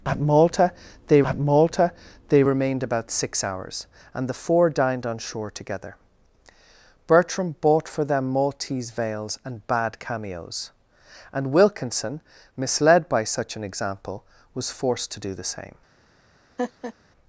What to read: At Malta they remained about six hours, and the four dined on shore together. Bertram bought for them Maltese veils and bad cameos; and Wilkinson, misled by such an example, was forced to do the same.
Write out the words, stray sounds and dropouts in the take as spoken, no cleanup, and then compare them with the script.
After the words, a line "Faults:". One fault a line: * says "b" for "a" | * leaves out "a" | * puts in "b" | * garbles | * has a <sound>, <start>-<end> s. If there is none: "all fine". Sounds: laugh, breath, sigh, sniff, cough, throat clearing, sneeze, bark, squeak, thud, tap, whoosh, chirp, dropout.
At Malta they at Malta they remained about six hours, and the four dined on shore together. Bertram bought for them Maltese veils and bad cameos; and Wilkinson, misled by such an example, was forced to do the same.
Faults:
* puts in "at Malta they"
* has a laugh, 16.6-16.9 s